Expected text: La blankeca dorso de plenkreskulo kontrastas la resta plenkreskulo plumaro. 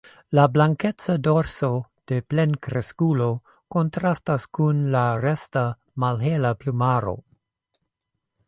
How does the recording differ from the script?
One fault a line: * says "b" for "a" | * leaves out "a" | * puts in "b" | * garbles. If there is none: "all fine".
* puts in "kun"
* says "malhela" for "plenkreskulo"